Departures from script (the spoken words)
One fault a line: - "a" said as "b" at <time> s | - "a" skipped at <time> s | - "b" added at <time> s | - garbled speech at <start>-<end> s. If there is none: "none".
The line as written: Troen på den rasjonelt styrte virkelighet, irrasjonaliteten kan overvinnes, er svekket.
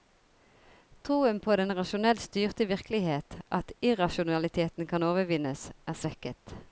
- "at" added at 3.5 s